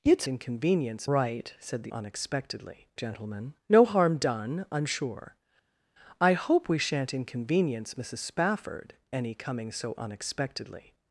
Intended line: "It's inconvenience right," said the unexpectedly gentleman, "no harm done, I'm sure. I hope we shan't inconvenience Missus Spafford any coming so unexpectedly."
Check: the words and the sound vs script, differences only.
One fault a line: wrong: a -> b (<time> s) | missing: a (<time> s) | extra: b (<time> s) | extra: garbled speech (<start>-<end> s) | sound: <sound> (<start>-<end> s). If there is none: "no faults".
no faults